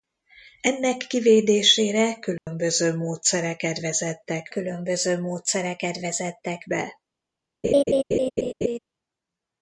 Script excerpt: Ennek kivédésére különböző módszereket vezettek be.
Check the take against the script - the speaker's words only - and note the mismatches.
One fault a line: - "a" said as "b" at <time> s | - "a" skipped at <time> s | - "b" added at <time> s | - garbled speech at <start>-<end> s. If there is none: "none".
- "különböző módszereket vezettek" added at 4.5 s